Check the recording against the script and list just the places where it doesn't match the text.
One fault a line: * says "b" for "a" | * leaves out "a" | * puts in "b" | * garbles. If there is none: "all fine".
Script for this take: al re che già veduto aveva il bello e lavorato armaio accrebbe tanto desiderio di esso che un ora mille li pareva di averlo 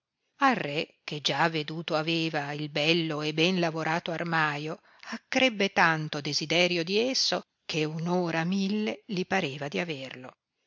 * puts in "ben"